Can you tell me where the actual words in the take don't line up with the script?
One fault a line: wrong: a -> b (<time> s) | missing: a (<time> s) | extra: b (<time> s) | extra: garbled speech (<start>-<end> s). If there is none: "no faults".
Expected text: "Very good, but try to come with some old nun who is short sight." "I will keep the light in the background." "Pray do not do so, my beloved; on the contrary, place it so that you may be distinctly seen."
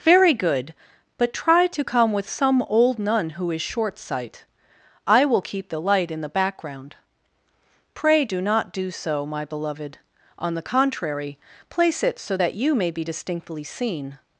no faults